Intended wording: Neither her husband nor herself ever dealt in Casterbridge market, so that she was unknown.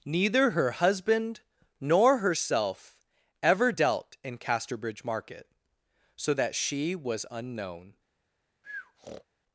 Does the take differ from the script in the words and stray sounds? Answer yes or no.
yes